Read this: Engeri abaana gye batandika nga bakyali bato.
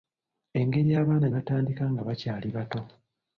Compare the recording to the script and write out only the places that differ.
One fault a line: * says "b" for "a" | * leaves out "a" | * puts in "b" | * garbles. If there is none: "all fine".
* leaves out "gye"